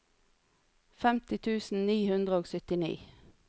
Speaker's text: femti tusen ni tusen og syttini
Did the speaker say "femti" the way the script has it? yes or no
yes